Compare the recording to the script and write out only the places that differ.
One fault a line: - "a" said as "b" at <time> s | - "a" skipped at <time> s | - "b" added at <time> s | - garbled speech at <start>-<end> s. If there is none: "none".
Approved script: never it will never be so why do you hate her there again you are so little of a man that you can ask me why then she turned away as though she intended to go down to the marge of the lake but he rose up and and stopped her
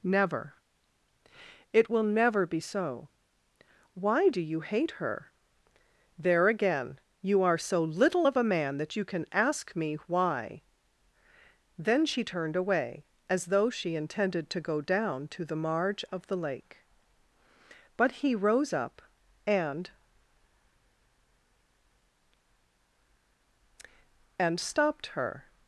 none